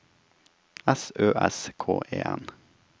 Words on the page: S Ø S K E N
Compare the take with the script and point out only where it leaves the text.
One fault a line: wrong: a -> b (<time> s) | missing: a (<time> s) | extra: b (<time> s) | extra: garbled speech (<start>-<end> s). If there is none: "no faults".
no faults